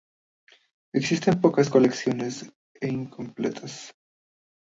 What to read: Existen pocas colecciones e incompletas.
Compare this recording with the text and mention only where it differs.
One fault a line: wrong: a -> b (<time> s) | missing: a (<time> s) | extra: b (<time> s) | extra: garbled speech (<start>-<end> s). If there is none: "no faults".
no faults